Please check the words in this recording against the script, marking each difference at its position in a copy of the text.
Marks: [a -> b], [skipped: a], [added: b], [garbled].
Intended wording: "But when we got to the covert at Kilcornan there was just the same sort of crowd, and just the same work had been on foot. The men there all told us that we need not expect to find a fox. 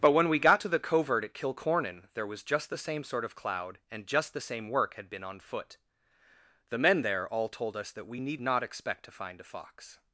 "But when we got to the covert at Kilcornan there was just the same sort of [crowd, -> cloud] and just the same work had been on foot. The men there all told us that we need not expect to find a fox.